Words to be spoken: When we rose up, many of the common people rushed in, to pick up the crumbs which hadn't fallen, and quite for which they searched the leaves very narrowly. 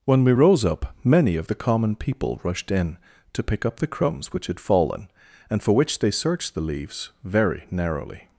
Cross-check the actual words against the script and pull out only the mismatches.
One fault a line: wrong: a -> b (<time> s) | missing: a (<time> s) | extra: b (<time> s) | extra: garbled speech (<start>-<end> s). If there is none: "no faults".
wrong: hadn't -> had (4.4 s)
missing: quite (5.6 s)